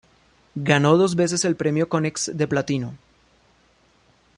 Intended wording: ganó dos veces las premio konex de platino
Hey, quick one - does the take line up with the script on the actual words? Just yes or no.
no